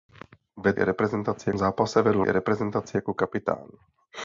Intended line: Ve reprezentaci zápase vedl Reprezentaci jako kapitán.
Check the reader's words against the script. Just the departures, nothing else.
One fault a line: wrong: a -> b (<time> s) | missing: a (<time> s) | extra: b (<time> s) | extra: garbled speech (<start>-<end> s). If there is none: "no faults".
no faults